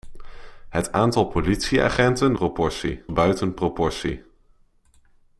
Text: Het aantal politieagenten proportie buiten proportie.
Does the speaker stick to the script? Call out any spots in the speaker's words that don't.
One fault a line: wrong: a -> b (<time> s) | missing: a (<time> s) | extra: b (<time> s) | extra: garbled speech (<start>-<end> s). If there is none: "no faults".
no faults